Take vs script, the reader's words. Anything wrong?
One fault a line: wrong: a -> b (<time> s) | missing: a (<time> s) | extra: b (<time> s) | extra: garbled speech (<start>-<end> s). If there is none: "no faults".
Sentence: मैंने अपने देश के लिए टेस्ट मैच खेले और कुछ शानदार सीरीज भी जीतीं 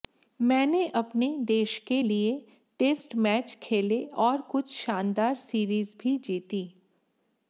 no faults